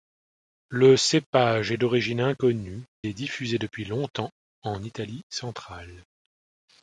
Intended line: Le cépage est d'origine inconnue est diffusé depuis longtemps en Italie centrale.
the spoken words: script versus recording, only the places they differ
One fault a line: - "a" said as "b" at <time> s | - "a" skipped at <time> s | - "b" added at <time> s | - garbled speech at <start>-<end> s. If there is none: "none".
none